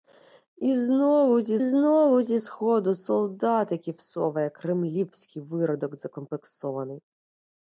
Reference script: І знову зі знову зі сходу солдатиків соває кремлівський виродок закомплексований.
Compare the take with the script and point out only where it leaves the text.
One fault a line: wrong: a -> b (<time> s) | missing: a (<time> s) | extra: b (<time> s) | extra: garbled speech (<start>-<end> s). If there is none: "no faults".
no faults